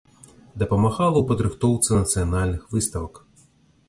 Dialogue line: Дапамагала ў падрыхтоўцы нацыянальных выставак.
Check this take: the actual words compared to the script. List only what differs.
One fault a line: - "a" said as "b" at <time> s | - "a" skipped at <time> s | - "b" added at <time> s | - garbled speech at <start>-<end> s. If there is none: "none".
none